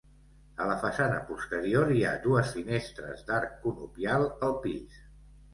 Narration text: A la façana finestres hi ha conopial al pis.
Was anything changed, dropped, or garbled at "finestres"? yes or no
yes